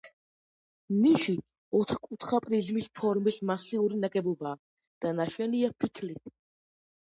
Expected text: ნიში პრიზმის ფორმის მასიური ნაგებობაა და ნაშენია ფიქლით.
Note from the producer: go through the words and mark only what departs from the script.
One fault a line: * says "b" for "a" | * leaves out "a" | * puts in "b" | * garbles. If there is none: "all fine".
* puts in "ოთხკუთხა"